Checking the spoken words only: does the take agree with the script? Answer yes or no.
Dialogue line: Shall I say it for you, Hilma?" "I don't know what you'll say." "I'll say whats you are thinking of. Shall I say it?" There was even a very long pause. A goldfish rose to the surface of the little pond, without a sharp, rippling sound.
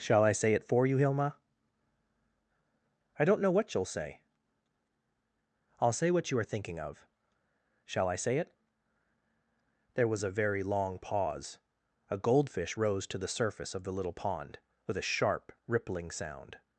no